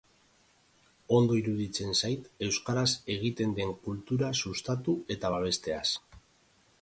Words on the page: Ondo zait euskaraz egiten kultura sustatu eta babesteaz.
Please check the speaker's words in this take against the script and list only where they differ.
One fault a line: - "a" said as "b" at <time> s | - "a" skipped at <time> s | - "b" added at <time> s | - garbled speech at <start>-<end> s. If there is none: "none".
- "iruditzen" added at 1.4 s
- "den" added at 3.6 s